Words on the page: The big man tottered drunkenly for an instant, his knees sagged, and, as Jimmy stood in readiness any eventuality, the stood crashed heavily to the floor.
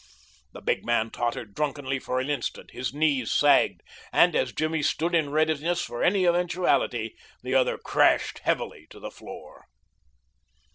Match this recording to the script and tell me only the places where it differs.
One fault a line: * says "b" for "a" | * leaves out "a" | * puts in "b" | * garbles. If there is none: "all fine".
* puts in "for"
* says "other" for "stood"